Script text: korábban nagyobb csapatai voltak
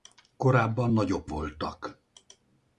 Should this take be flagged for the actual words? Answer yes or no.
yes